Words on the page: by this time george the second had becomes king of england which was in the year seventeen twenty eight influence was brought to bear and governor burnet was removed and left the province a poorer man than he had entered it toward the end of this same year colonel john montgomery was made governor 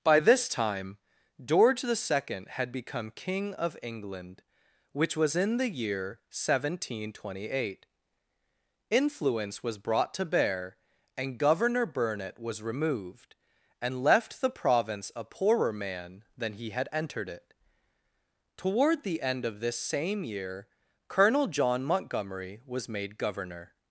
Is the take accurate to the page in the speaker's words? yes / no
no